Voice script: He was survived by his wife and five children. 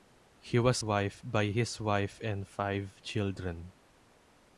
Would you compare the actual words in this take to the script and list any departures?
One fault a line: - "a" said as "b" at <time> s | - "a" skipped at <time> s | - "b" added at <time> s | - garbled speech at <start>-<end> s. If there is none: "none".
- "survived" said as "wife" at 0.8 s